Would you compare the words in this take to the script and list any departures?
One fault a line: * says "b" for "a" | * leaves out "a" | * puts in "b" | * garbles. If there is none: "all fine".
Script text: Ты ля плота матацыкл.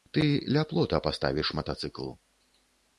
* puts in "паставіш"